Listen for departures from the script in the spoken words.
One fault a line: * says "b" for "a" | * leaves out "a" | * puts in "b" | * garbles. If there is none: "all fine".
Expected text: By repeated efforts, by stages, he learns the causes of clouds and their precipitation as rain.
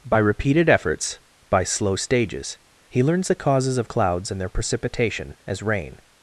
* puts in "slow"